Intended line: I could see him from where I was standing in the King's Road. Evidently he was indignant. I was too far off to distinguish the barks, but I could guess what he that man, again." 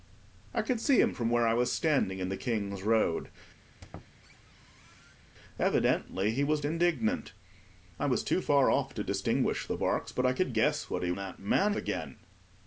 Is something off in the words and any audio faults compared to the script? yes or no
yes